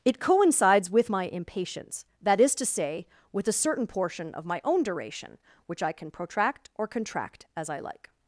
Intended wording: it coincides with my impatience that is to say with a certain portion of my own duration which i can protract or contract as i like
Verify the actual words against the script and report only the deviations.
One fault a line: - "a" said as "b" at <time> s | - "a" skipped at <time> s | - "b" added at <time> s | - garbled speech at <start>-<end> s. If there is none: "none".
none